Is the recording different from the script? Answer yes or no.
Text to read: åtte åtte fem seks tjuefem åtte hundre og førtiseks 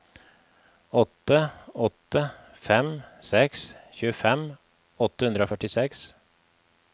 no